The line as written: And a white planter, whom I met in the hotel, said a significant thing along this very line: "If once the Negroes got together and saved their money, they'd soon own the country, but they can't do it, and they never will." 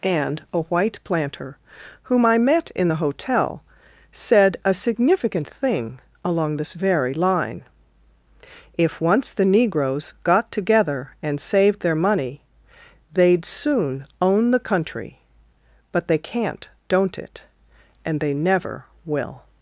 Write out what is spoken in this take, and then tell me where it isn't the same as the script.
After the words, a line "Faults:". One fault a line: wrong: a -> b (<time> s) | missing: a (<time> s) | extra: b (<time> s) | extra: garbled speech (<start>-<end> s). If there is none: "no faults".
And a white planter, whom I met in the hotel, said a significant thing along this very line: "If once the Negroes got together and saved their money, they'd soon own the country, but they can't don't it, and they never will."
Faults:
wrong: do -> don't (16.9 s)